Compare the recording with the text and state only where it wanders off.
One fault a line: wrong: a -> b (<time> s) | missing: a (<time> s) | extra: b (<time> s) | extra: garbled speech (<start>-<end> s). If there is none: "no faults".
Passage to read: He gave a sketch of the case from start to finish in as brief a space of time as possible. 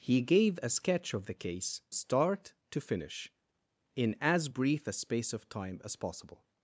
missing: from (1.8 s)